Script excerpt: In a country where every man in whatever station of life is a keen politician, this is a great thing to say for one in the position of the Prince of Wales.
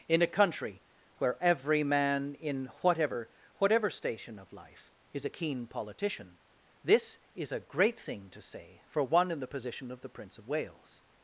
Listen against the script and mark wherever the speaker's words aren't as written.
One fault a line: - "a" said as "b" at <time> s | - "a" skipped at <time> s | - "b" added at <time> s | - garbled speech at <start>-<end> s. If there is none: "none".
- "whatever" added at 3.6 s